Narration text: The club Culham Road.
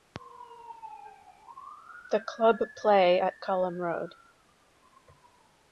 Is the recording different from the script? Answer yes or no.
yes